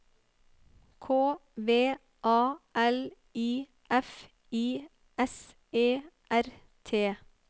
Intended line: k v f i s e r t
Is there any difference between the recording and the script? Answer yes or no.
yes